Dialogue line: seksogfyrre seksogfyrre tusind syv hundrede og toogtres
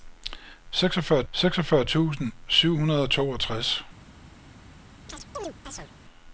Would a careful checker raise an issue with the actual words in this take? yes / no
no